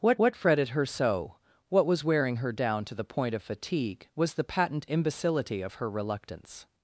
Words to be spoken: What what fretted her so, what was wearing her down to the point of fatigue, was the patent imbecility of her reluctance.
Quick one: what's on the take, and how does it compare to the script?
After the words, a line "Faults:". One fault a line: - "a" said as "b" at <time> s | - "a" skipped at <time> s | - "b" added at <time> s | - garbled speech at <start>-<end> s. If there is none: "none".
What what fretted her so, what was wearing her down to the point of fatigue, was the patent imbecility of her reluctance.
Faults:
none